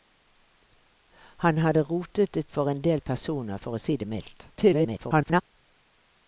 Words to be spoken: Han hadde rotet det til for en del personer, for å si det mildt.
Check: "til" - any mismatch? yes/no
yes